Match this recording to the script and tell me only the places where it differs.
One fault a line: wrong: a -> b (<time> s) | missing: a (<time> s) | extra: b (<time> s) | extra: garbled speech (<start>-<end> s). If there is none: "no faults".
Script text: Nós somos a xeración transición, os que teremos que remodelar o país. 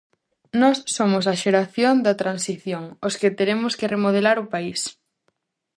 extra: da (2.0 s)